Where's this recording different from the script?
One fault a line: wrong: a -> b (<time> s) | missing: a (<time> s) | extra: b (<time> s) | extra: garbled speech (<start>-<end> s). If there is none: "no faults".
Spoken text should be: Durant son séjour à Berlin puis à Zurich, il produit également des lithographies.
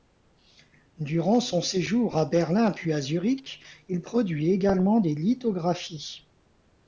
no faults